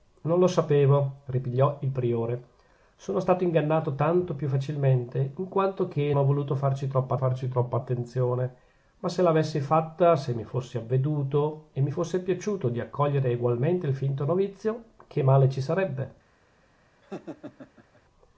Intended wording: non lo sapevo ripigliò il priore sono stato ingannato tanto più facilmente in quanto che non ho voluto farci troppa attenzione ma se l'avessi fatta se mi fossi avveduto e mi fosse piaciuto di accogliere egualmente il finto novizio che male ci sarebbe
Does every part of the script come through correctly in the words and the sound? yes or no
no